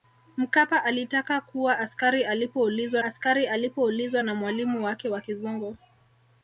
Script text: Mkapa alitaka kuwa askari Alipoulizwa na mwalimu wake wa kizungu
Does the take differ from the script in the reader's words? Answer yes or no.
yes